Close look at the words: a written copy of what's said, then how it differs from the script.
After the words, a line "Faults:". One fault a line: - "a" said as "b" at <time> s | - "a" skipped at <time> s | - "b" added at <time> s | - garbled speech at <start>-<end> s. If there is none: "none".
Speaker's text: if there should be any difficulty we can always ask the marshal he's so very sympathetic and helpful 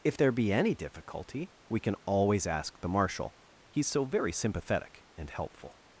if there be any difficulty we can always ask the marshal he's so very sympathetic and helpful
Faults:
- "should" skipped at 0.3 s